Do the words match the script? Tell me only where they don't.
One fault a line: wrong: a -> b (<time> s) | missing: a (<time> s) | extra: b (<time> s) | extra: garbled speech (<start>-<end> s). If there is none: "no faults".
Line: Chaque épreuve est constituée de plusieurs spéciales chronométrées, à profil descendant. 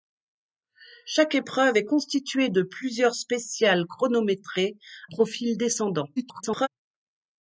missing: à (4.8 s)
extra: garbled speech (6.2-6.7 s)